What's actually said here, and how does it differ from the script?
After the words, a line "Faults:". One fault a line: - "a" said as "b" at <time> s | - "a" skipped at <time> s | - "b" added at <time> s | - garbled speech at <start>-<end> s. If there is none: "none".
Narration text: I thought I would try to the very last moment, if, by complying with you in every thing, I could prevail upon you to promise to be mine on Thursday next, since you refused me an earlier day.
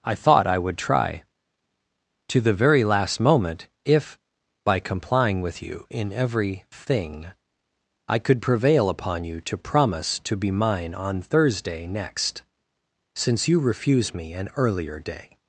I thought I would try to the very last moment, if, by complying with you in every thing, I could prevail upon you to promise to be mine on Thursday next, since you refuse me an earlier day.
Faults:
- "refused" said as "refuse" at 13.6 s